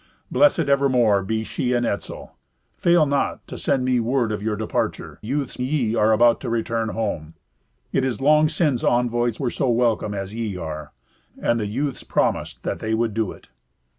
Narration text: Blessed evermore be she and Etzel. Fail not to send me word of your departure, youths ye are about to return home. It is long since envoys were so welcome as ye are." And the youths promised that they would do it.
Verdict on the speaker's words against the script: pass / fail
pass